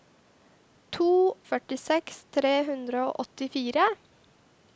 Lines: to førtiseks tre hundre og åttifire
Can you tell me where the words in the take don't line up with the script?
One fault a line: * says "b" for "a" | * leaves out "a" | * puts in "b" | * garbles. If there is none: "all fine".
all fine